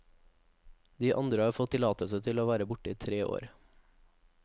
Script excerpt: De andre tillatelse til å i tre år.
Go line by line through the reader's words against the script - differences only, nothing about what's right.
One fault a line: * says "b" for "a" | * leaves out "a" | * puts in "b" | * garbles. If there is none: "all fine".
* puts in "har fått"
* puts in "være borte"